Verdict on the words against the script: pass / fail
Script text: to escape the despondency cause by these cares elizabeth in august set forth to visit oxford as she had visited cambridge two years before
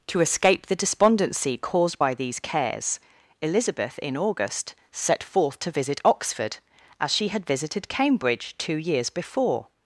fail